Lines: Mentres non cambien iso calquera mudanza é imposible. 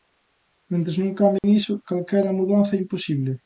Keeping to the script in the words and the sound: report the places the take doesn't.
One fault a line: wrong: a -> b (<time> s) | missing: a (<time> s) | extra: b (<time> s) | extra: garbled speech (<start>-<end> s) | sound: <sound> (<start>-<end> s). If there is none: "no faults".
sound: dropout (1.4-1.4 s)